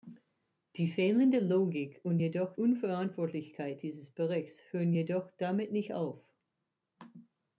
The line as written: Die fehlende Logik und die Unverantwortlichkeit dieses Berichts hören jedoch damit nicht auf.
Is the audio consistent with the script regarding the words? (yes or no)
no